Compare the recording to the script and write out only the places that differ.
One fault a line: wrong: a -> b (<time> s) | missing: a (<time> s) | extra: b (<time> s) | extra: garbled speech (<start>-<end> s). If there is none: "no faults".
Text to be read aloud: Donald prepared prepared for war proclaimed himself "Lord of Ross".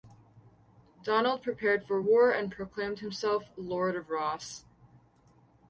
missing: prepared (1.9 s)
extra: and (2.3 s)